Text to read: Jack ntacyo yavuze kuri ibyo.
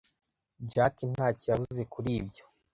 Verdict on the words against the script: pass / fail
pass